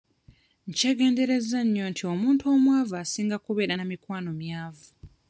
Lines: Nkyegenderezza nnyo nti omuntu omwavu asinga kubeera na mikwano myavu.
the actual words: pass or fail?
pass